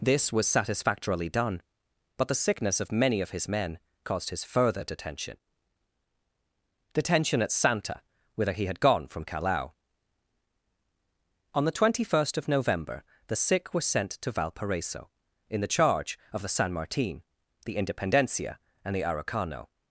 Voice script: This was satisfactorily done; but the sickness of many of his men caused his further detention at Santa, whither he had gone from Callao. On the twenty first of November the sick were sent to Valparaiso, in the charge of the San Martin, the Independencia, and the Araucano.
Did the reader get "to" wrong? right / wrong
right